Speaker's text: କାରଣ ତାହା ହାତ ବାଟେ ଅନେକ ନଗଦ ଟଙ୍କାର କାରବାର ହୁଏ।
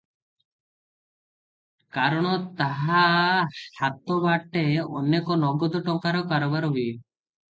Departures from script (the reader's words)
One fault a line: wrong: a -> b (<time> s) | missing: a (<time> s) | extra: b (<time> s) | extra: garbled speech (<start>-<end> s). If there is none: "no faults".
no faults